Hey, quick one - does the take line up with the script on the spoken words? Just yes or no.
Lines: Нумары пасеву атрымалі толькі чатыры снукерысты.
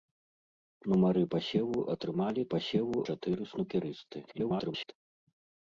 no